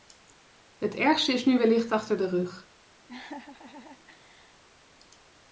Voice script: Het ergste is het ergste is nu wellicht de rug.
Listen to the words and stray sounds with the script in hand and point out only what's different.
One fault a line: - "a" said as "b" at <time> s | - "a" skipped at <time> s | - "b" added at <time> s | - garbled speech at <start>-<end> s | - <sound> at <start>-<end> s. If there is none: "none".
- "het ergste is" skipped at 1.4 s
- "achter" added at 1.9 s
- laugh at 3.1-4.6 s